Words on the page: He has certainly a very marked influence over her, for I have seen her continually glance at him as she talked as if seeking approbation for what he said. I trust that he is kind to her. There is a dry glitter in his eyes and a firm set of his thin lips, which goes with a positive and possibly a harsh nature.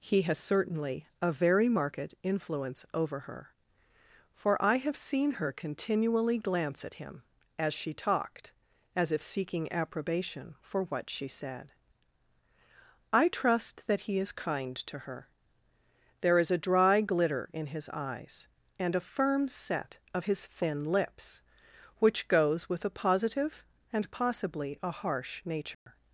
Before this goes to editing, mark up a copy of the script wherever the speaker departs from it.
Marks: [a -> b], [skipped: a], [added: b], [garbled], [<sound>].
He has certainly a very marked influence over her, for I have seen her continually glance at him as she talked as if seeking approbation for what [he -> she] said. I trust that he is kind to her. There is a dry glitter in his eyes and a firm set of his thin lips, which goes with a positive and possibly a harsh nature. [dropout]